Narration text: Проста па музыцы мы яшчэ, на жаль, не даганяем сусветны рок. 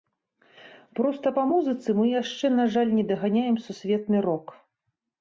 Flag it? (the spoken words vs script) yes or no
no